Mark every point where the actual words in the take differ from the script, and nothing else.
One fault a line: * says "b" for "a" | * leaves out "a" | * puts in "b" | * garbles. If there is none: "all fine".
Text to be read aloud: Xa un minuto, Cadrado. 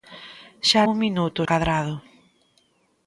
all fine